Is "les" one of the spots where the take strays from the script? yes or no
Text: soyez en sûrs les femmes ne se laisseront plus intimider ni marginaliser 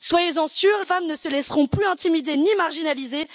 yes